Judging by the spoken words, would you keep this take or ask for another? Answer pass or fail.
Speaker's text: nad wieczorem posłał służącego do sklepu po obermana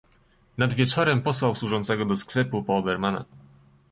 pass